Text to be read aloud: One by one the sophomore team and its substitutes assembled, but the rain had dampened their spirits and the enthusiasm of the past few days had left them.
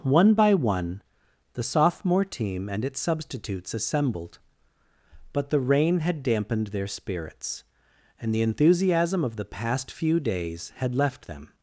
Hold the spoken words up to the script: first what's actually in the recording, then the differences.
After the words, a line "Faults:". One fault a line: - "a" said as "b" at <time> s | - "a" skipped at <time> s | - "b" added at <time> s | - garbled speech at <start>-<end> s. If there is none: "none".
One by one the sophomore team and its substitutes assembled, but the rain had dampened their spirits and the enthusiasm of the past few days had left them.
Faults:
none